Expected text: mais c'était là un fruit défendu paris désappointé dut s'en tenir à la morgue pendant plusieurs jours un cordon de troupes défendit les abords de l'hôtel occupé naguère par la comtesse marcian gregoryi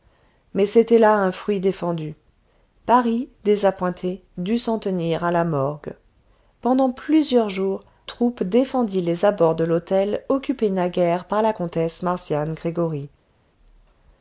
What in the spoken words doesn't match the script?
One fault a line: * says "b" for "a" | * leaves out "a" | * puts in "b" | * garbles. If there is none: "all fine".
* leaves out "un cordon de"